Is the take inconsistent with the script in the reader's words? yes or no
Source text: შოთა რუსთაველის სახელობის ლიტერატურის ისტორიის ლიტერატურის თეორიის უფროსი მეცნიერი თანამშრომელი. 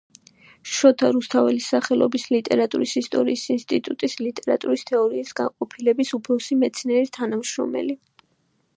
yes